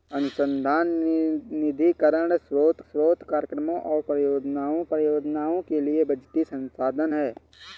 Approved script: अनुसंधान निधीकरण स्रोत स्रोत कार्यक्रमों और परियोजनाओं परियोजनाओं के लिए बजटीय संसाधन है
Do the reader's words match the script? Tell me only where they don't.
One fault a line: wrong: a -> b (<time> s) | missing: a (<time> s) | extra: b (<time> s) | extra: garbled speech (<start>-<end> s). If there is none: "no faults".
no faults